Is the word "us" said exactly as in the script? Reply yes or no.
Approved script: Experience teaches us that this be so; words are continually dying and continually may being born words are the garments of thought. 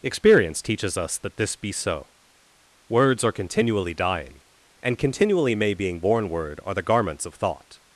yes